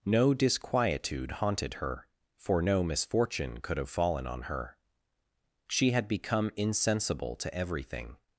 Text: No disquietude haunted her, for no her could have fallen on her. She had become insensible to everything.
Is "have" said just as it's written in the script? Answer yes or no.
yes